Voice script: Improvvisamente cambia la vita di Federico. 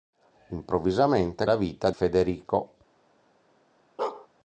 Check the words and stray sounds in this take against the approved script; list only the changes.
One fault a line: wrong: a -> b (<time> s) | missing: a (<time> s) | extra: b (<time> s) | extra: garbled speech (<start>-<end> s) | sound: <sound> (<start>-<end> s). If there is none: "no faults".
missing: cambia (1.4 s)
missing: di (1.9 s)
sound: bark (4.0-4.3 s)